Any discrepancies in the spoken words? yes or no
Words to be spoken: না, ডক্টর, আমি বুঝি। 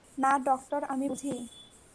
no